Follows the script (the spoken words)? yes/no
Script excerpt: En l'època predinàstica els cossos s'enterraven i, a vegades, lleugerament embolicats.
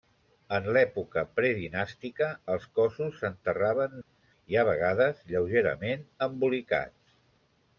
yes